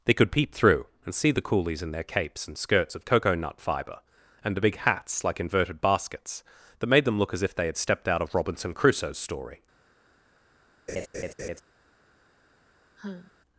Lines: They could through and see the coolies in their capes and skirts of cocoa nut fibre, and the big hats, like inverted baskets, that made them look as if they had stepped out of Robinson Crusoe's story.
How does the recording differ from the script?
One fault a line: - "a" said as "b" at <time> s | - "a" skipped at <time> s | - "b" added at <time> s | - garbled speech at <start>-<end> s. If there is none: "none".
- "peep" added at 0.3 s